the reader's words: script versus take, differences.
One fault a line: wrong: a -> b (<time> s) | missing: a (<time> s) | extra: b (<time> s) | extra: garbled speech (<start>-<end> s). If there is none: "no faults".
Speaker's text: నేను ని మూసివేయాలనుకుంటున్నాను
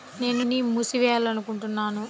no faults